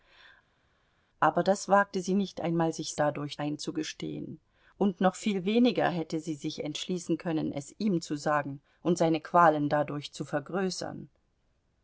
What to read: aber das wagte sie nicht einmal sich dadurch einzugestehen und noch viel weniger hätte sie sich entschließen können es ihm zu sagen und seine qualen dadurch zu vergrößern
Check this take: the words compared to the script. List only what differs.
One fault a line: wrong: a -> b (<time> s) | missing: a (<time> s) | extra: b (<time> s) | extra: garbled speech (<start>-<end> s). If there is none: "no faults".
no faults